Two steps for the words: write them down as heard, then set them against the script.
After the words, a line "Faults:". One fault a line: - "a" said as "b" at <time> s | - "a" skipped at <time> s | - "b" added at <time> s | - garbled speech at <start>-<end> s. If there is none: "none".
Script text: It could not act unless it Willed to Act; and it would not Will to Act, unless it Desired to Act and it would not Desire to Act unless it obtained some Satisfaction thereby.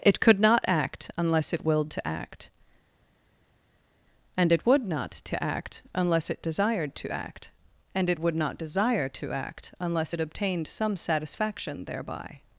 It could not act unless it Willed to Act; and it would not to Act, unless it Desired to Act and it would not Desire to Act unless it obtained some Satisfaction thereby.
Faults:
- "Will" skipped at 5.1 s